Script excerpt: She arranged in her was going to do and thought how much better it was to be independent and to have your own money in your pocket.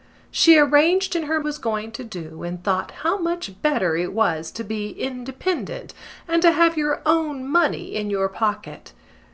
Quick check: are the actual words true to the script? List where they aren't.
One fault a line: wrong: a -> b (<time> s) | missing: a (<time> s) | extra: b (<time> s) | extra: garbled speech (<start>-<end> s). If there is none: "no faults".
no faults